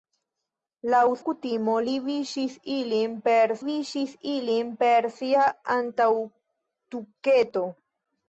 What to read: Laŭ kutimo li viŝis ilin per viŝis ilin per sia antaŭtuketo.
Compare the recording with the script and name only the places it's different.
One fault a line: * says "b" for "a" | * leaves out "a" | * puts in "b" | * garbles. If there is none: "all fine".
all fine